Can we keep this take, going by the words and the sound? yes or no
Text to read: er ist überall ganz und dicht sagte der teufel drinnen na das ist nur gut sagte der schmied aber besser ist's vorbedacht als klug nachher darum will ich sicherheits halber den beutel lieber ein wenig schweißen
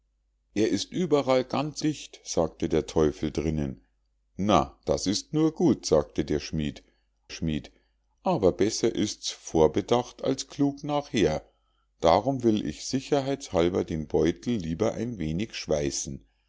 no